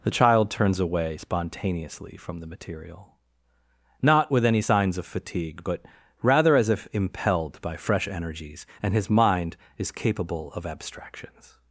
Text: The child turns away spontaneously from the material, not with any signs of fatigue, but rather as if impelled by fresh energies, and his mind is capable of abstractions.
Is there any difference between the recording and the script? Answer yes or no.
no